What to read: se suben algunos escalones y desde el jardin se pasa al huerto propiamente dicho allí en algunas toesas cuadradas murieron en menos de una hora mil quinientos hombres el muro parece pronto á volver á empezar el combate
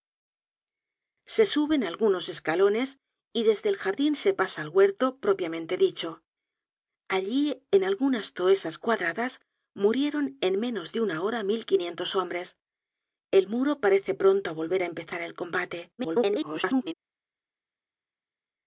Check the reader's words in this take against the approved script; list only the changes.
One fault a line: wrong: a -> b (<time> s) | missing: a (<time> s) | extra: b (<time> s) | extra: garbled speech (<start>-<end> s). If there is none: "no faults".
extra: garbled speech (16.0-16.9 s)